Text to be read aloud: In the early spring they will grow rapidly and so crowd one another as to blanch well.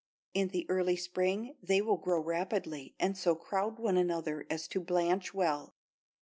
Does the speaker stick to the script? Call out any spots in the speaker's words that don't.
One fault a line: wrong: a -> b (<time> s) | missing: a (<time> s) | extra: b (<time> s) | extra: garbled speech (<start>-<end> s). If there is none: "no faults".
no faults